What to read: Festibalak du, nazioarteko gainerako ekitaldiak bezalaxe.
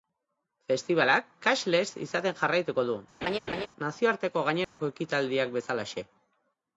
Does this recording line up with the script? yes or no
no